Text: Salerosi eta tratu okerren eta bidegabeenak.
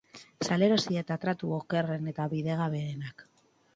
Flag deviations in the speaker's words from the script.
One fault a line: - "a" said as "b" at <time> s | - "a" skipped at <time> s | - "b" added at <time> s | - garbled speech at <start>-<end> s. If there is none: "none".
none